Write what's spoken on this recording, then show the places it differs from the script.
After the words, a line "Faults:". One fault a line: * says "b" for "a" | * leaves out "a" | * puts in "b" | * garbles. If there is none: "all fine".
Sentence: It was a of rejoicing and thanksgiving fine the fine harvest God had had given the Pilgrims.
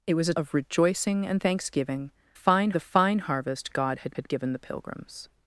It was a of rejoicing and thanksgiving fine the fine harvest God had had given the Pilgrims.
Faults:
all fine